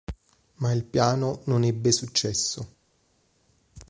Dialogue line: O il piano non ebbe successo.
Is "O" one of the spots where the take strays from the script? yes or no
yes